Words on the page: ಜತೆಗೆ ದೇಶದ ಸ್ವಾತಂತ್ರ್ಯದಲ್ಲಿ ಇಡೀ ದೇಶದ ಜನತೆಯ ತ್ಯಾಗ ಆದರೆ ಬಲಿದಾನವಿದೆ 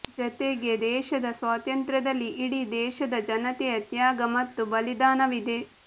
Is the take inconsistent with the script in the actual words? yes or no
yes